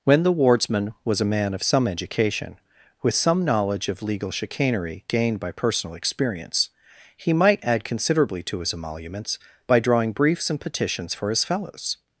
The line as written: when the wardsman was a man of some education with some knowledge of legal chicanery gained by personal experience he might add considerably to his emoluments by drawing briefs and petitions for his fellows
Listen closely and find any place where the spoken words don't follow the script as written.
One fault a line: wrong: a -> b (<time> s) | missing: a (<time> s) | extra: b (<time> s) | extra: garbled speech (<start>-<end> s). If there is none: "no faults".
no faults